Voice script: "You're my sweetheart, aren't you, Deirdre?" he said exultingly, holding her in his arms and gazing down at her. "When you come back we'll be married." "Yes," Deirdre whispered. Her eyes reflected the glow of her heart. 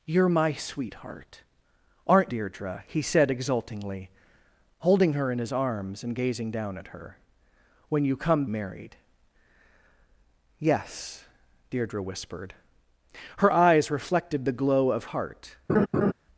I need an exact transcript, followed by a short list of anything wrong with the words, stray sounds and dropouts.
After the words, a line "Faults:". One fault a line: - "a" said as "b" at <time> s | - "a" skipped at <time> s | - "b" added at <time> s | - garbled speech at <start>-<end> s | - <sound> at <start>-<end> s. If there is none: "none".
"You're my sweetheart, aren't Deirdre?" he said exultingly, holding her in his arms and gazing down at her. "When you come married." "Yes," Deirdre whispered. Her eyes reflected the glow of heart.
Faults:
- "you" skipped at 2.3 s
- "back we'll be" skipped at 8.4 s
- "her" skipped at 15.0 s
- laugh at 15.7-16.1 s